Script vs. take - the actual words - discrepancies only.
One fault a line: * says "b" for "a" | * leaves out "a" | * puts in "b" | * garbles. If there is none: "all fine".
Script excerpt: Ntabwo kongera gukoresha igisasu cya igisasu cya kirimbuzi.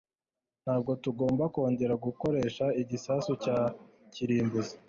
* puts in "tugomba"
* leaves out "igisasu cya"